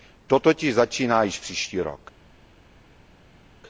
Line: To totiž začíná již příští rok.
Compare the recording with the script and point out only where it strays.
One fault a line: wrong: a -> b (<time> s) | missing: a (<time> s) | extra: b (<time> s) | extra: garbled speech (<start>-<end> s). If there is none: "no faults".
no faults